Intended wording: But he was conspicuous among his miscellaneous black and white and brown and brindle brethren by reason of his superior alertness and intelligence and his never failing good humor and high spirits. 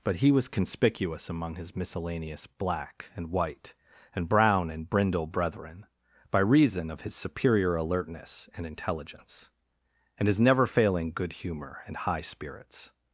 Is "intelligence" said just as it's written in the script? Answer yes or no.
yes